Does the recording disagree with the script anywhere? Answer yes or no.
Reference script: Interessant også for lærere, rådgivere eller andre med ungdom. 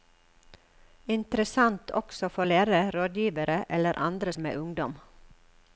no